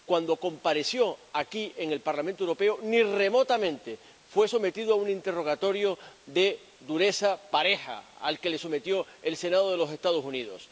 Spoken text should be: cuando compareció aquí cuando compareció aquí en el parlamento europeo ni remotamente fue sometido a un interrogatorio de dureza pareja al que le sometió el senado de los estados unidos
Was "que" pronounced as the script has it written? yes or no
yes